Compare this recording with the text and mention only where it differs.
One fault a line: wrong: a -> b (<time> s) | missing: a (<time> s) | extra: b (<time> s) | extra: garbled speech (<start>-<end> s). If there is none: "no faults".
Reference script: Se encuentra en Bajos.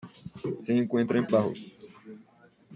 no faults